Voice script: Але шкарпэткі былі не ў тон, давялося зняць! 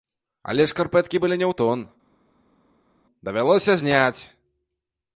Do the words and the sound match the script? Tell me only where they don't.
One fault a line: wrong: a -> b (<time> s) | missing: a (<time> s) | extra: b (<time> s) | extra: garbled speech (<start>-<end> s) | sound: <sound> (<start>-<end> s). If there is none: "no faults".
no faults